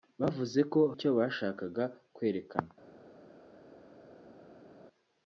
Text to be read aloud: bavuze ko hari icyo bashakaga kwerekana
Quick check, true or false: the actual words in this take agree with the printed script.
false